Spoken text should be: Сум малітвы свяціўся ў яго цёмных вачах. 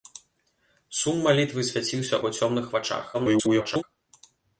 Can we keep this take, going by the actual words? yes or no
no